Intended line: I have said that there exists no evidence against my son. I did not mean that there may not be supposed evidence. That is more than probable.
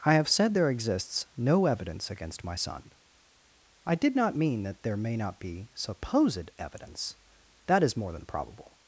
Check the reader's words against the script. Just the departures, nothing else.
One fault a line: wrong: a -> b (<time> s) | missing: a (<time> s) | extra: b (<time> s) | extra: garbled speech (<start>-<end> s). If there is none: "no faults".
missing: that (0.6 s)